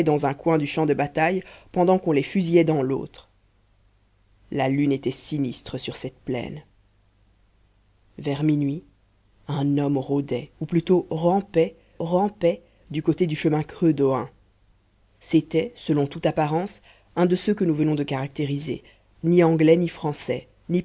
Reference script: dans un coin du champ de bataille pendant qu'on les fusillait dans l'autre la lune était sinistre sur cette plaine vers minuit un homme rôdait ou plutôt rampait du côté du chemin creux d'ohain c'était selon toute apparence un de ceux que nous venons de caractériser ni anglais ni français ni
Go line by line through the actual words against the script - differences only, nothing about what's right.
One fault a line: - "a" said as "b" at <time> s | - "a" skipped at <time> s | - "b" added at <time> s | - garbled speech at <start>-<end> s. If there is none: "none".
- "rampait" added at 12.0 s